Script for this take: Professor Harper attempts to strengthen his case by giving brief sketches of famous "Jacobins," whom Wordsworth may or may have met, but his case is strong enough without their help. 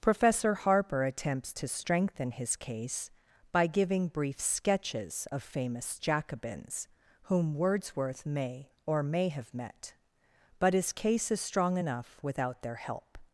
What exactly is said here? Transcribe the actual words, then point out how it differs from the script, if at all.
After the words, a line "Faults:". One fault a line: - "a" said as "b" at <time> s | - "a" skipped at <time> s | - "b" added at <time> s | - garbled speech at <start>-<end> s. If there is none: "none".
Professor Harper attempts to strengthen his case by giving brief sketches of famous "Jacobins," whom Wordsworth may or may have met, but his case is strong enough without their help.
Faults:
none